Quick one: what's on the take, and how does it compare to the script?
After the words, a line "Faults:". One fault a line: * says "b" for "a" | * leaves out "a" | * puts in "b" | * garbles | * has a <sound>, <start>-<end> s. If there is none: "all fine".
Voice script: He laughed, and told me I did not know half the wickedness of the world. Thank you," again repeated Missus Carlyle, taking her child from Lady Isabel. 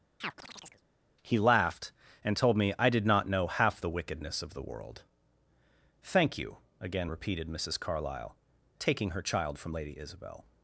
He laughed, and told me I did not know half the wickedness of the world. Thank you," again repeated Missus Carlyle, taking her child from Lady Isabel.
Faults:
* has a chirp, 0.2-0.8 s